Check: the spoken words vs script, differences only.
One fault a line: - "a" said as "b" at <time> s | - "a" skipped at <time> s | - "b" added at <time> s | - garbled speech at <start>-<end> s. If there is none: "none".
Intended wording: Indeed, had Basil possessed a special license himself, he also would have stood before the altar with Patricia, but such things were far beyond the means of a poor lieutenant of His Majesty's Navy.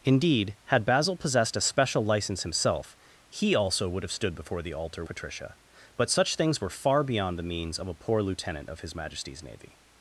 - "with" skipped at 5.0 s